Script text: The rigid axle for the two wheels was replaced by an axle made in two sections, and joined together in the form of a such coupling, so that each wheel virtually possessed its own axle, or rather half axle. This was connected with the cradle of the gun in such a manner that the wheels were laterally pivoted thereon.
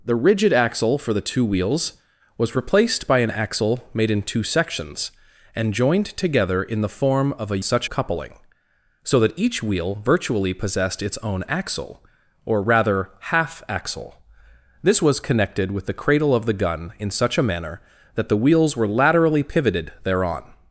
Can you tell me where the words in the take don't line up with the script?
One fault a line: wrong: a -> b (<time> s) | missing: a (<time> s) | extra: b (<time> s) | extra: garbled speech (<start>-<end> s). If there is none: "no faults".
no faults